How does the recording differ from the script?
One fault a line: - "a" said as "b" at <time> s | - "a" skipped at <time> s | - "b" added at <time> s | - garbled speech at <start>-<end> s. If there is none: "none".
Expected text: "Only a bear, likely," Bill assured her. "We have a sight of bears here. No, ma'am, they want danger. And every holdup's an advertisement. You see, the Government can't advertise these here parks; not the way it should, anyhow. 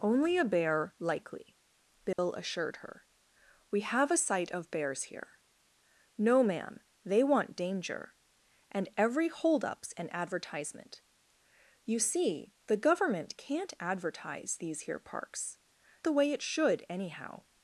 - "not" skipped at 15.6 s